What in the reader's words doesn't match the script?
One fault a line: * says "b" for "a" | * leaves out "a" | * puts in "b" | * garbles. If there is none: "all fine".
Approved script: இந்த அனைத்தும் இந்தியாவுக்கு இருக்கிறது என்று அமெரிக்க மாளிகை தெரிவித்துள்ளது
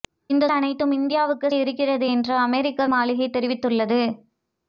all fine